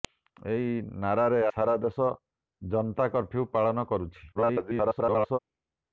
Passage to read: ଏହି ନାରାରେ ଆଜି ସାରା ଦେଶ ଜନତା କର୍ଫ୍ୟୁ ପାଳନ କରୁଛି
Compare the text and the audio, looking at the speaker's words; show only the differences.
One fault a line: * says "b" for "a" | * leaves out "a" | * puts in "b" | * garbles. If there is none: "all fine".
* leaves out "ଆଜି"
* garbles